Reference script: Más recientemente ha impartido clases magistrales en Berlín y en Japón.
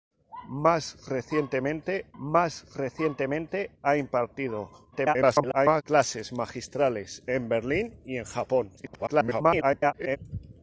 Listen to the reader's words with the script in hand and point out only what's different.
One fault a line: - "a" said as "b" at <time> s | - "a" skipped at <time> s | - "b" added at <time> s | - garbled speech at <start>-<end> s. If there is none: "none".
- "más recientemente" added at 2.2 s
- garbled speech at 4.9-5.8 s
- garbled speech at 8.8-10.2 s